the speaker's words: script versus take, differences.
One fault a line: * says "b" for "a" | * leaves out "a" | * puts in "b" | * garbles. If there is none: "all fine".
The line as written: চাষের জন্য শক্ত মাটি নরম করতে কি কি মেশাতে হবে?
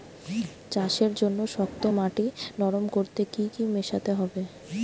all fine